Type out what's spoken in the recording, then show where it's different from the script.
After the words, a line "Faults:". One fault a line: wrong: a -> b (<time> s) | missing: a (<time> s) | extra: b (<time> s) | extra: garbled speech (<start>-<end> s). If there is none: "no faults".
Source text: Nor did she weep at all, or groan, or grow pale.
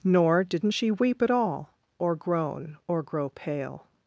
Nor didn't she weep at all, or groan, or grow pale.
Faults:
wrong: did -> didn't (0.4 s)